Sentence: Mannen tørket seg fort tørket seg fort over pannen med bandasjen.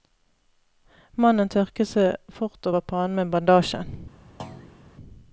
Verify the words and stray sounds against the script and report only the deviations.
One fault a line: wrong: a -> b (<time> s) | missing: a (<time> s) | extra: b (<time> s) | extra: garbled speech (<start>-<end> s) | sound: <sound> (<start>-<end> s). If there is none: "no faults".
missing: tørket seg fort (2.7 s)
sound: thud (4.4-4.8 s)